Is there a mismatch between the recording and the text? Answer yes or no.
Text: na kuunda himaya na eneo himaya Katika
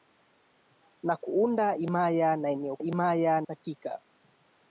no